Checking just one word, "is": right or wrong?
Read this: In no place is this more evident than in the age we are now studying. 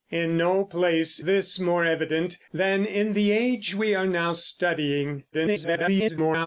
wrong